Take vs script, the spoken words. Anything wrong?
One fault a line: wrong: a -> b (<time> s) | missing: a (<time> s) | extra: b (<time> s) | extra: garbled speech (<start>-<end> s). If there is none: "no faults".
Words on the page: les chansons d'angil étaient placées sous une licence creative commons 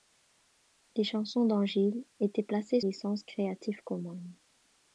missing: sous une (2.8 s)